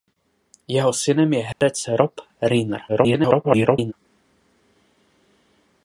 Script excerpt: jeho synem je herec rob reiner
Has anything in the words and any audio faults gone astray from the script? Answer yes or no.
yes